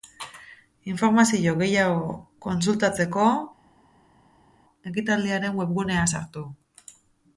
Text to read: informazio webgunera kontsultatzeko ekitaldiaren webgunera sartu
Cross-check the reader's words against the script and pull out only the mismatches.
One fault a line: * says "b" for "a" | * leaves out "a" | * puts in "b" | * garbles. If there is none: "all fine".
* says "gehiago" for "webgunera"